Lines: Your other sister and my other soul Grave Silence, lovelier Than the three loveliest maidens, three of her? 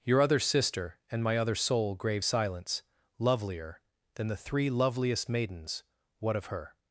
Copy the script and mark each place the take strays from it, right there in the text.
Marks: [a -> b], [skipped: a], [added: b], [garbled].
Your other sister and my other soul Grave Silence, lovelier Than the three loveliest maidens, [three -> what] of her?